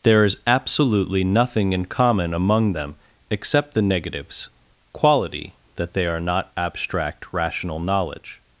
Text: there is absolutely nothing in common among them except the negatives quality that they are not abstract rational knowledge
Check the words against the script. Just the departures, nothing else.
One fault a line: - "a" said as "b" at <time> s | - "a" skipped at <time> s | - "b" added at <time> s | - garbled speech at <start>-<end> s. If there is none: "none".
none